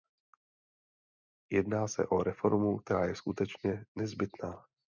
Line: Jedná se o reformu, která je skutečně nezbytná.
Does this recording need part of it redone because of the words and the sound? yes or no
no